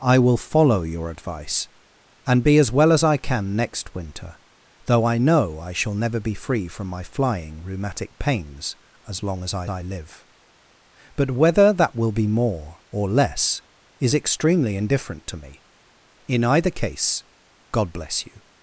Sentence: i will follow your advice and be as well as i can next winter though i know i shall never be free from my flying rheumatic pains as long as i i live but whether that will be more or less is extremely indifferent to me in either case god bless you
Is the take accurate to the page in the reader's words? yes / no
yes